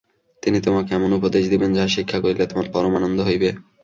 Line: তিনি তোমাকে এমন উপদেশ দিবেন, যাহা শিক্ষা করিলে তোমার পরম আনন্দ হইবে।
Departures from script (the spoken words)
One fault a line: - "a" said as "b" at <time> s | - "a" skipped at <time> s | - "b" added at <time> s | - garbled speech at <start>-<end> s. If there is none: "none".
none